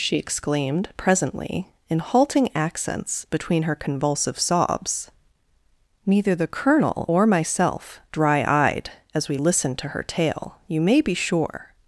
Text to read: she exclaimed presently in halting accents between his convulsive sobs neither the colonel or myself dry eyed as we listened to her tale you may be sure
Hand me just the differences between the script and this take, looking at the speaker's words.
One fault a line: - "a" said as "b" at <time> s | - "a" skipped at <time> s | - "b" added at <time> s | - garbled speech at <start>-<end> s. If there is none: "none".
- "his" said as "her" at 3.6 s